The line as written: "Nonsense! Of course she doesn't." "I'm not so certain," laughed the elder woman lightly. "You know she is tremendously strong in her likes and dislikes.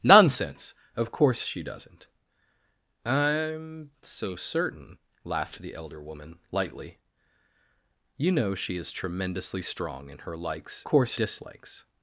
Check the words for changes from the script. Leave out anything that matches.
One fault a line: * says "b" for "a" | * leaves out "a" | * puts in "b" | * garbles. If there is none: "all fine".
* leaves out "not"
* says "course" for "and"